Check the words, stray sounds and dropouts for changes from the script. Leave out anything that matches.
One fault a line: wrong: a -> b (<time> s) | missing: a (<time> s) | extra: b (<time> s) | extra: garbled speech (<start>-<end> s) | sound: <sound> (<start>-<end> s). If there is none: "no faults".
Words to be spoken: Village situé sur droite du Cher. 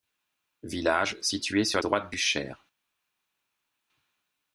no faults